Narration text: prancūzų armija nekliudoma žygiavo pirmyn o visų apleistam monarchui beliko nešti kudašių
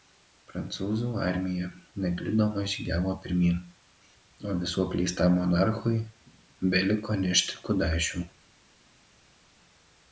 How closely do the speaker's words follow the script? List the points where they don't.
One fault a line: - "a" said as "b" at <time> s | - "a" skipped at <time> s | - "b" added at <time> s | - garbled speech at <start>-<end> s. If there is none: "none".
none